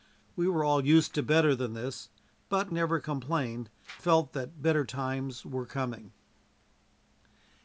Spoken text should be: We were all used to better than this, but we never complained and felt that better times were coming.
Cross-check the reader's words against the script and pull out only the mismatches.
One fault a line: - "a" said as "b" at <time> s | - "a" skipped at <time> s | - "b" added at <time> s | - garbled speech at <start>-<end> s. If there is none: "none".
- "we" skipped at 2.7 s
- "and" skipped at 3.7 s